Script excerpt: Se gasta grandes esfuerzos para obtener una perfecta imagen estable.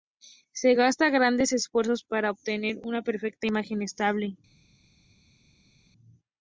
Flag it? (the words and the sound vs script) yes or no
no